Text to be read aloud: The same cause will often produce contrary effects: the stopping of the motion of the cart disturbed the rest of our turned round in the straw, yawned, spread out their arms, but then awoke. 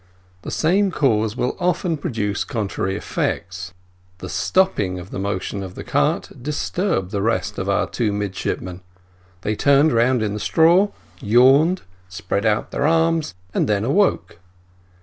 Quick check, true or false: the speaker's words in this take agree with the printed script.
false